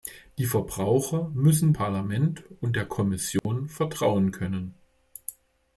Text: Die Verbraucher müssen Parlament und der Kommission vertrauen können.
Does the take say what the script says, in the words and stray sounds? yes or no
no